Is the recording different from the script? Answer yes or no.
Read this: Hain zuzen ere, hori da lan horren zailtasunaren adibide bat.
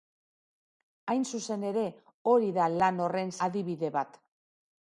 yes